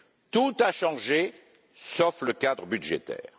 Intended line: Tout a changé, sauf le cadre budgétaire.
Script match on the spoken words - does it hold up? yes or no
yes